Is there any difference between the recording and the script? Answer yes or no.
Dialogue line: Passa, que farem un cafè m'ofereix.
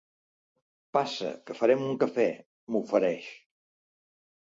no